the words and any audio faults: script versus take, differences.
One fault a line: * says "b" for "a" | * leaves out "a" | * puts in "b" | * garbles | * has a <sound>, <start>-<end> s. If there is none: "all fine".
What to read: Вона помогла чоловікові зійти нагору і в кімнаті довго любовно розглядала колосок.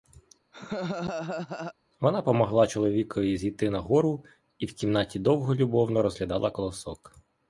* has a laugh, 0.5-1.7 s